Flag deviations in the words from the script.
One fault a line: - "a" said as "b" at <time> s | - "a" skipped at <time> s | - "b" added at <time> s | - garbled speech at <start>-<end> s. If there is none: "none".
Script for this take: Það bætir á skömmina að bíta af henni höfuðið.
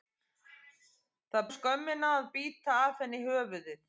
- "bætir" skipped at 1.4 s